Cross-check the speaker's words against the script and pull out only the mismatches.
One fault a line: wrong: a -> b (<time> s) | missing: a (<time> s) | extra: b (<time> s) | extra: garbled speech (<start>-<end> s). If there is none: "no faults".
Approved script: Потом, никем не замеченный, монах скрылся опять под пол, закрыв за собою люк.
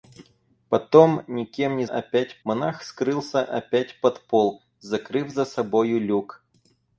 wrong: замеченный -> опять (1.8 s)